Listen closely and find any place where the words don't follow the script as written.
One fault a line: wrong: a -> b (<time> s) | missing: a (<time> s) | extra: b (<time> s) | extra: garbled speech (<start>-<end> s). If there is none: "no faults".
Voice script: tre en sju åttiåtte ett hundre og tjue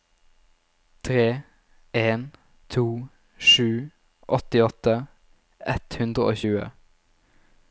extra: to (2.7 s)